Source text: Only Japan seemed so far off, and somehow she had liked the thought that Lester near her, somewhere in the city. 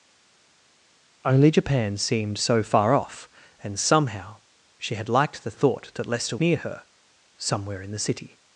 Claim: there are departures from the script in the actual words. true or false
false